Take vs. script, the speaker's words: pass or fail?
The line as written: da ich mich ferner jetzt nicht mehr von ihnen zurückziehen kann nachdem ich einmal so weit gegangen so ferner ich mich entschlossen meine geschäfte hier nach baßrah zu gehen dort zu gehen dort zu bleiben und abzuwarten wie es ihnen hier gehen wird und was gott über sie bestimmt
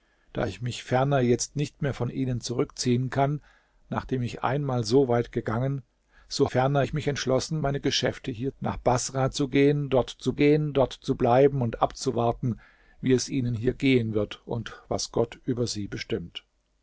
pass